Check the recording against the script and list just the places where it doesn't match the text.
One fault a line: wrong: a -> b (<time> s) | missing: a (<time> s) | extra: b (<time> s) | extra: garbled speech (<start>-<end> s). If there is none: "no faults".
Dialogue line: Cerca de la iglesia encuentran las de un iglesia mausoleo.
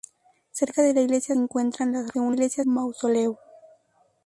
no faults